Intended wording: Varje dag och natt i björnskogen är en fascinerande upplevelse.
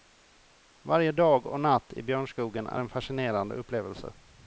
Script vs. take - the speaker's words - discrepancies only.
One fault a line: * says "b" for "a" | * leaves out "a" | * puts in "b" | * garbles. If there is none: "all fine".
all fine